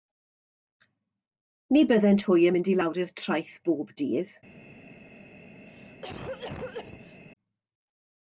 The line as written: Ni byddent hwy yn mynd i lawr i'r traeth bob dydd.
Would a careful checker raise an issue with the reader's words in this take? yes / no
no